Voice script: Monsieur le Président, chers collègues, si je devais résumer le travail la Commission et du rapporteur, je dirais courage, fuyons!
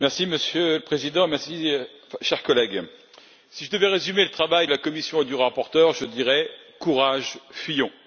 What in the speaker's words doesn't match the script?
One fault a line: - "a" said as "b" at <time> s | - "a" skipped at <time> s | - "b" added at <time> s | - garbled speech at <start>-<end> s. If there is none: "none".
none